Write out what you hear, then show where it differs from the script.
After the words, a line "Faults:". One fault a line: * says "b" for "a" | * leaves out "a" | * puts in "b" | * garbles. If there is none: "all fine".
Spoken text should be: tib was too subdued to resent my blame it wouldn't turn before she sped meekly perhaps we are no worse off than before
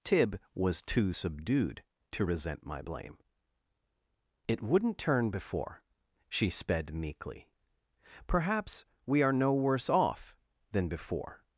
tib was too subdued to resent my blame it wouldn't turn before she sped meekly perhaps we are no worse off than before
Faults:
all fine